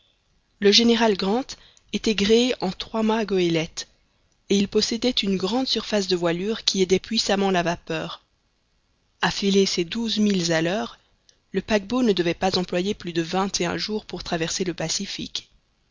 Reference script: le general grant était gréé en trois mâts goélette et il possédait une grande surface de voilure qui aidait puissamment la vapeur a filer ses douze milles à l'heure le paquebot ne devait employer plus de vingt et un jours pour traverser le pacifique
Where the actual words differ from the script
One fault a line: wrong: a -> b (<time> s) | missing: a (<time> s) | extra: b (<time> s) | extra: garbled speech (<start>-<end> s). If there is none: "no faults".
extra: pas (12.3 s)